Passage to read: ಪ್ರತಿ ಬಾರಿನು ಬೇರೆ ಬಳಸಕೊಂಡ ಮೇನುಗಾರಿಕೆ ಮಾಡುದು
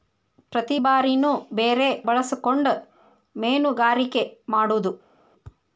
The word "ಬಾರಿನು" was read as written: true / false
true